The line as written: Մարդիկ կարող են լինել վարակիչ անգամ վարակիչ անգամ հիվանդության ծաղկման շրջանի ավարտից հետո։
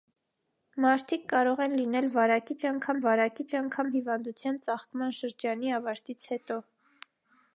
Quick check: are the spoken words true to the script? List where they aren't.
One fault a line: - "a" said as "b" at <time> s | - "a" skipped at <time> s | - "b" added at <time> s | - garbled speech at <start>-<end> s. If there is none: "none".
none